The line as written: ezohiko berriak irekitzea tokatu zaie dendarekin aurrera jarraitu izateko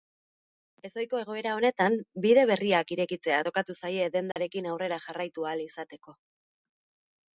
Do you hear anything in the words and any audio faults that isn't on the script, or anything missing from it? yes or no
yes